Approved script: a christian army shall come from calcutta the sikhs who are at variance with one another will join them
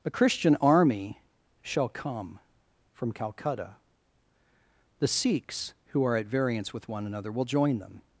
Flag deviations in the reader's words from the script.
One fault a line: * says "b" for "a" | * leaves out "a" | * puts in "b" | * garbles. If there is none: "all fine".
all fine